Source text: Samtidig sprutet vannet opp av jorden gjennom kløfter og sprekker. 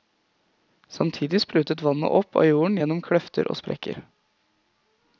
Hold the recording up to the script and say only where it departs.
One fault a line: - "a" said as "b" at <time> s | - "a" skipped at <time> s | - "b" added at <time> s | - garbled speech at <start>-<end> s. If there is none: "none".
none